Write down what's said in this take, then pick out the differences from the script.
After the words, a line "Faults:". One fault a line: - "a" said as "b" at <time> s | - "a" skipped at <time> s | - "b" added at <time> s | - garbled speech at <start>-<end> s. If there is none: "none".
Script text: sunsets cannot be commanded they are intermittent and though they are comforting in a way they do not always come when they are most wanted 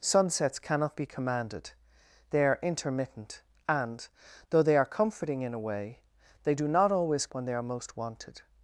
sunsets cannot be commanded they are intermittent and though they are comforting in a way they do not always when they are most wanted
Faults:
- "come" skipped at 7.3 s